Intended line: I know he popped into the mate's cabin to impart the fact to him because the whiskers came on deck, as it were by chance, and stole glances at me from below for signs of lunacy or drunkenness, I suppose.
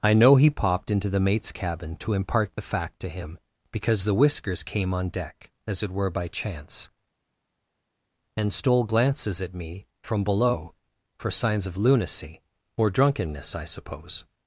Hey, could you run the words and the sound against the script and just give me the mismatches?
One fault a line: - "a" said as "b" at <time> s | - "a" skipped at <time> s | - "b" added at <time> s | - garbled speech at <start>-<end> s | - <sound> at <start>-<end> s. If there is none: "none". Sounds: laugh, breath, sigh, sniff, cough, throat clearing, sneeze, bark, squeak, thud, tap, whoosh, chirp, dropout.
none